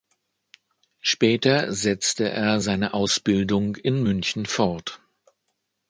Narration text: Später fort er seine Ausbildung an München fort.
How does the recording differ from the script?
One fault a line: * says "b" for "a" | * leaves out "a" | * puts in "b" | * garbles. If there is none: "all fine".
* says "setzte" for "fort"
* says "in" for "an"